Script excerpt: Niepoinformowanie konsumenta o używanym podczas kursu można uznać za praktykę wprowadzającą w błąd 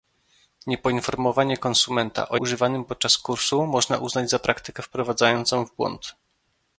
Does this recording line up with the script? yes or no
yes